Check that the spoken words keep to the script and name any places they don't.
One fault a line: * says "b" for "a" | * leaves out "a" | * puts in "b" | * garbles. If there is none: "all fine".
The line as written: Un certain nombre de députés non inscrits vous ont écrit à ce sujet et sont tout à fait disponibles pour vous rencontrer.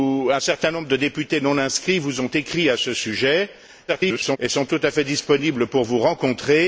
* garbles